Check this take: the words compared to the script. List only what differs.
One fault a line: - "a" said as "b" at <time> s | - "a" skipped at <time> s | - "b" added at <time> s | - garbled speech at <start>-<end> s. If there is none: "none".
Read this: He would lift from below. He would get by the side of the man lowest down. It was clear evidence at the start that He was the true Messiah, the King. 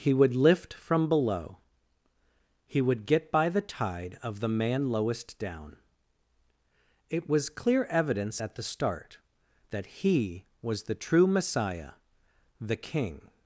- "side" said as "tide" at 3.6 s